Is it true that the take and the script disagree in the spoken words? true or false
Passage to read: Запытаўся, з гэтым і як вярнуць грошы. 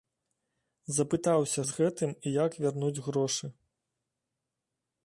false